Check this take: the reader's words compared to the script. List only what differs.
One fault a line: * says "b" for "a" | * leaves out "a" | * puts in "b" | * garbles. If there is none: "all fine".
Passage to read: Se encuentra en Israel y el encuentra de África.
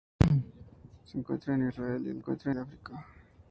all fine